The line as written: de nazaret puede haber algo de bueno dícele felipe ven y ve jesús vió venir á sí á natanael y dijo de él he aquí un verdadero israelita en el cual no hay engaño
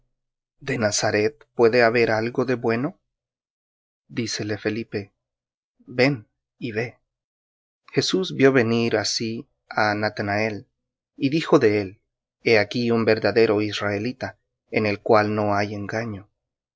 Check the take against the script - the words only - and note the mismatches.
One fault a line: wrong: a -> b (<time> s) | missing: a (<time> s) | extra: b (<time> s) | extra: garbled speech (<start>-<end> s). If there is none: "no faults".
no faults